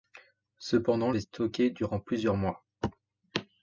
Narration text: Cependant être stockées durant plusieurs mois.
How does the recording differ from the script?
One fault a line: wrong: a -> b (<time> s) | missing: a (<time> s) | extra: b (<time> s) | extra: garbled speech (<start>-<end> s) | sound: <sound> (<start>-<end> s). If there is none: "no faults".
no faults